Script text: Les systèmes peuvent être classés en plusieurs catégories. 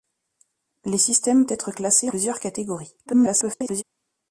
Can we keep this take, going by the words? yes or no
no